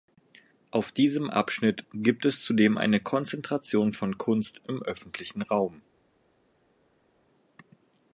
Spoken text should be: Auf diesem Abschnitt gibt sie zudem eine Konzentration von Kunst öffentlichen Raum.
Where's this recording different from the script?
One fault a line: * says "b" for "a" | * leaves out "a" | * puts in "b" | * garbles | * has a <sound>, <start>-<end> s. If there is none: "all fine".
* says "es" for "sie"
* puts in "im"